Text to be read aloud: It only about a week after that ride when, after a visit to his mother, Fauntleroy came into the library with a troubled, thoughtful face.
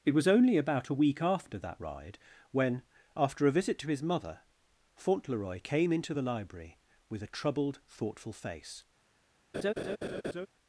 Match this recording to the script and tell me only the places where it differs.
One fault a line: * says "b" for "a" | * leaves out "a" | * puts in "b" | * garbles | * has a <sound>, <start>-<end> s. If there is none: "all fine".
* puts in "was"
* has a laugh, 9.5-10.5 s